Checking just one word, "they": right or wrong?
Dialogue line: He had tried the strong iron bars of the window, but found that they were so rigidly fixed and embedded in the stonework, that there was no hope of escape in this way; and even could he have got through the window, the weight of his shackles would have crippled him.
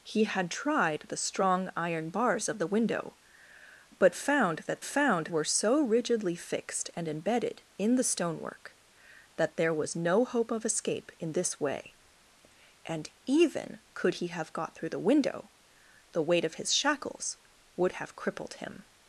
wrong